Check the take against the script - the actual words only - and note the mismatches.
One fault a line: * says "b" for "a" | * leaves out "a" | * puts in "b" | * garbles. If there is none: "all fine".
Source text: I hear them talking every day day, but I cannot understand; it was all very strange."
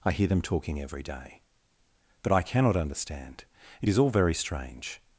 * leaves out "day"
* says "is" for "was"